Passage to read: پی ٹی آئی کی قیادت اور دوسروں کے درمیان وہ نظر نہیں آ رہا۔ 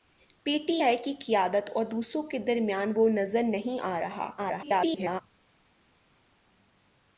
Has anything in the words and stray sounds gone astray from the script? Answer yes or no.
yes